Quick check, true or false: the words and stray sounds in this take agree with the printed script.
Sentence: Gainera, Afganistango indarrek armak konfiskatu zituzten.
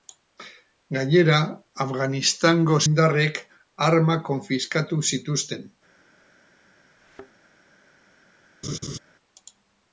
false